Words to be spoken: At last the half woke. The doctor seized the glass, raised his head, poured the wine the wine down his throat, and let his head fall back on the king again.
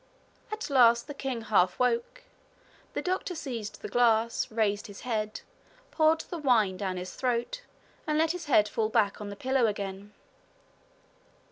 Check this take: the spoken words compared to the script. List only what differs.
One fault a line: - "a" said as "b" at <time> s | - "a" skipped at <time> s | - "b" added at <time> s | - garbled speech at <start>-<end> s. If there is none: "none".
- "king" added at 1.1 s
- "the wine" skipped at 6.8 s
- "king" said as "pillow" at 9.3 s